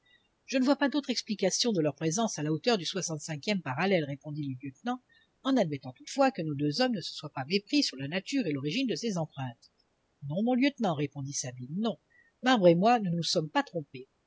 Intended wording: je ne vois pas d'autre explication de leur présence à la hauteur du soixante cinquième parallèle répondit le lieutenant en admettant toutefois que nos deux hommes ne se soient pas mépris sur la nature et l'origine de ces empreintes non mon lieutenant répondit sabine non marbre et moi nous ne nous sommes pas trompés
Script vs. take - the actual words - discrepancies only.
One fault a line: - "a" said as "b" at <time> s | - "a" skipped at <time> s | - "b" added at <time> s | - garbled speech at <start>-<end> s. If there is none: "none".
- "ne" skipped at 13.1 s